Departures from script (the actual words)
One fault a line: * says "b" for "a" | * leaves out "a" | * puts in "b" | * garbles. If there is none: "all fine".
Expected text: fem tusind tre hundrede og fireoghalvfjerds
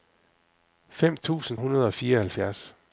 * leaves out "tre"